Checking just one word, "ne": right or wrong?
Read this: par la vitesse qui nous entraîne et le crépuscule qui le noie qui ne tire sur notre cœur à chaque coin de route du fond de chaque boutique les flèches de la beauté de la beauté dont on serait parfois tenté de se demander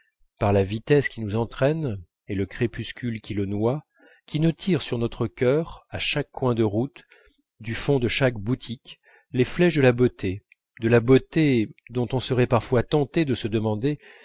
right